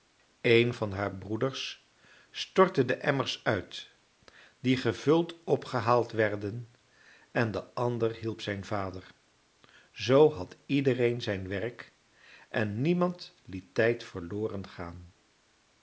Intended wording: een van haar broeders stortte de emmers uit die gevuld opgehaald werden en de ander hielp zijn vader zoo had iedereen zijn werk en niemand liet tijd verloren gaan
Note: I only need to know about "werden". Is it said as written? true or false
true